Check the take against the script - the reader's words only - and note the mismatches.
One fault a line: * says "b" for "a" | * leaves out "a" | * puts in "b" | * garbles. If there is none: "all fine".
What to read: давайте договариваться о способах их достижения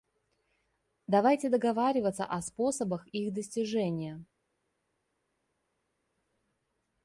all fine